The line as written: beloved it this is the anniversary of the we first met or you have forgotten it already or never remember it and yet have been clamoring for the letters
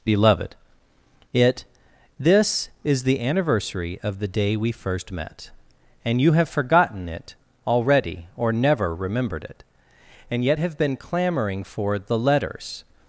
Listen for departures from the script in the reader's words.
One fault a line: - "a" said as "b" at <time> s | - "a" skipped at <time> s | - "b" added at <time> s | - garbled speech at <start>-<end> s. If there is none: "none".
- "day" added at 4.3 s
- "or" said as "and" at 6.0 s
- "remember" said as "remembered" at 8.9 s